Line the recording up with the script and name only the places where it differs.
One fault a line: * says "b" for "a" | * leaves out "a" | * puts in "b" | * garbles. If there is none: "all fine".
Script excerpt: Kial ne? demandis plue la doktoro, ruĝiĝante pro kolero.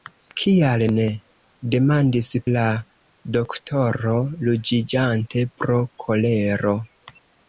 * leaves out "plue"